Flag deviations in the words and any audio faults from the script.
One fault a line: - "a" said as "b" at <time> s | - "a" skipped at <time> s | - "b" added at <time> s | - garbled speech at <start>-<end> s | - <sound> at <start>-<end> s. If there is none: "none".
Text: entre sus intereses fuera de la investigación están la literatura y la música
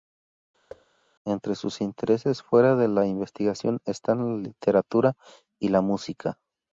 - thud at 0.7-0.9 s